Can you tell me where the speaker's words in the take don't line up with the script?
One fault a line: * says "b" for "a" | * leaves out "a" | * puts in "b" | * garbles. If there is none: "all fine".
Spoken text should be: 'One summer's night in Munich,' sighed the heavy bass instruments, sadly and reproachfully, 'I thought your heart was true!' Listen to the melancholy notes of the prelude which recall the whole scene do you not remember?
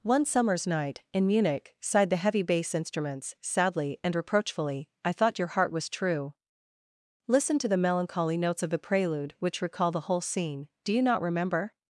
all fine